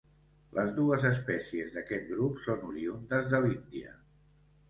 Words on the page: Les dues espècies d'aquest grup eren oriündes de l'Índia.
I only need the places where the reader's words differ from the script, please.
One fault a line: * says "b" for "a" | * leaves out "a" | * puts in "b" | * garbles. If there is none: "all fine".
* says "són" for "eren"